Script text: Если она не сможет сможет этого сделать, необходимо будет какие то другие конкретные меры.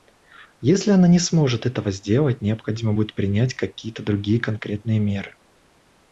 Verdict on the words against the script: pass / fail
fail